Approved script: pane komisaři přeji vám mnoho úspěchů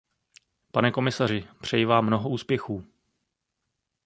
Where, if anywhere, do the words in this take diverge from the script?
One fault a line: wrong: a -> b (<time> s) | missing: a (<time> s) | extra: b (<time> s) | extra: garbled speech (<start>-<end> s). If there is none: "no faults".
no faults